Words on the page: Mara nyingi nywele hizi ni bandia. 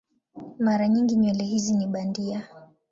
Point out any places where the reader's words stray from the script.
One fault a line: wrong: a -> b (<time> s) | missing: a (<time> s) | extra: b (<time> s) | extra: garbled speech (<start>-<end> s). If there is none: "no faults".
no faults